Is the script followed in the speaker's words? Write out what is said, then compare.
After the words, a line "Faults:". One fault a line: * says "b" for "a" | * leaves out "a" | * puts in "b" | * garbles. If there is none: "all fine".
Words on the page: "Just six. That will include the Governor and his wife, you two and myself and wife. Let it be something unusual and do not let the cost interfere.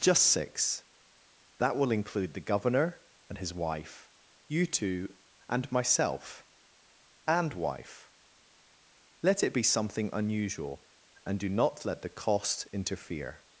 "Just six. That will include the Governor and his wife, you two and myself and wife. Let it be something unusual and do not let the cost interfere.
Faults:
all fine